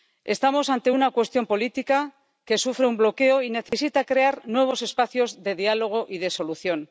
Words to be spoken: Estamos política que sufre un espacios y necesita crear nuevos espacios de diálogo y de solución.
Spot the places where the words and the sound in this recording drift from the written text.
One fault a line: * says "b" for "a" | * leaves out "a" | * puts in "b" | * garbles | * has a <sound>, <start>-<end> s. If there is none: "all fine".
* puts in "ante una cuestión"
* says "bloqueo" for "espacios"
* has a dropout, 3.7-3.7 s